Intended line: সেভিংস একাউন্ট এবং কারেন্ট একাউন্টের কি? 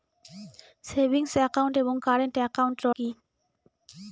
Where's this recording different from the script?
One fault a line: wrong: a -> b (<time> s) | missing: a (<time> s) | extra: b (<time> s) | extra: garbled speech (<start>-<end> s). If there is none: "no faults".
no faults